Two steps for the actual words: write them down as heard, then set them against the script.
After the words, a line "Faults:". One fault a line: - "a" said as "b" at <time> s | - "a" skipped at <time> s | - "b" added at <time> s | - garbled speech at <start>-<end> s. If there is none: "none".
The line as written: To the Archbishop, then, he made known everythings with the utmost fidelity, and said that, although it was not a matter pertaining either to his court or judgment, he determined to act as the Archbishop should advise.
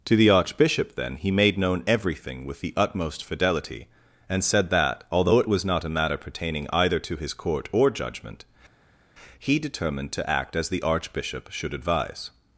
To the Archbishop, then, he made known everything with the utmost fidelity, and said that, although it was not a matter pertaining either to his court or judgment, he determined to act as the Archbishop should advise.
Faults:
- "everythings" said as "everything" at 1.9 s